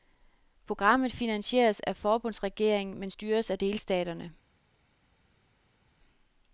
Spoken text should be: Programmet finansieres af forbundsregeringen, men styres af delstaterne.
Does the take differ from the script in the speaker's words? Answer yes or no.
no